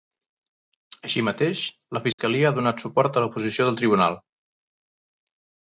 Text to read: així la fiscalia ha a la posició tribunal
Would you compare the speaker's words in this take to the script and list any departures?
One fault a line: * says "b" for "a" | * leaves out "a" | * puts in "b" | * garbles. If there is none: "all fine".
* puts in "mateix"
* puts in "donat suport"
* puts in "del"